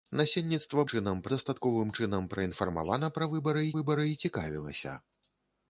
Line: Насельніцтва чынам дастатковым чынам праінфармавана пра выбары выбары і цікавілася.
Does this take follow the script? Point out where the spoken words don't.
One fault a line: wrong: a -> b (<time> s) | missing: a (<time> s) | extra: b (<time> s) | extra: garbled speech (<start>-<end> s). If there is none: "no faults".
no faults